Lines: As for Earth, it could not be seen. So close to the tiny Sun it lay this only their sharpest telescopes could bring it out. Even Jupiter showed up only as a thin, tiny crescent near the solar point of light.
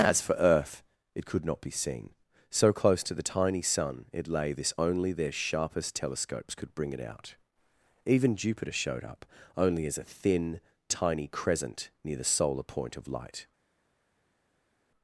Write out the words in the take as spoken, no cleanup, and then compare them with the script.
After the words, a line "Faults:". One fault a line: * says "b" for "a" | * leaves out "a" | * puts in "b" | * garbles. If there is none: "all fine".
As for Earth, it could not be seen. So close to the tiny Sun it lay this only their sharpest telescopes could bring it out. Even Jupiter showed up only as a thin, tiny crescent near the solar point of light.
Faults:
all fine